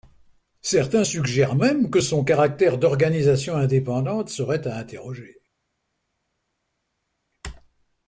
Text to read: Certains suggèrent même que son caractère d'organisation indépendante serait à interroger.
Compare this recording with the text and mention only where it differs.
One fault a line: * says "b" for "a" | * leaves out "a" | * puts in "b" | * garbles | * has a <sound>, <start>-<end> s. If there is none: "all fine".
all fine